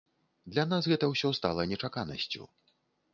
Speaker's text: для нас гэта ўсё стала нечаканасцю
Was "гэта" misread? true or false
false